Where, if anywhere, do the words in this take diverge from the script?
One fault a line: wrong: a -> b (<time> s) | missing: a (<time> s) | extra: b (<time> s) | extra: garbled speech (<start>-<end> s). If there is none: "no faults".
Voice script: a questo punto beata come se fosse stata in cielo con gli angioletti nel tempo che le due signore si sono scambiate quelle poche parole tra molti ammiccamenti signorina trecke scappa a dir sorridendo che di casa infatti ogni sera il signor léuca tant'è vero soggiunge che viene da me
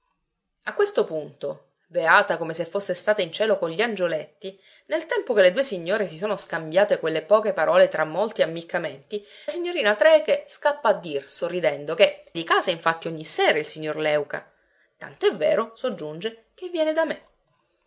no faults